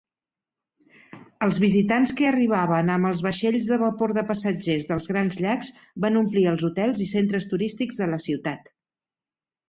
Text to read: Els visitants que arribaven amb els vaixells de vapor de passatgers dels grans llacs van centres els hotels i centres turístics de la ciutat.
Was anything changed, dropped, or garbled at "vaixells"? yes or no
no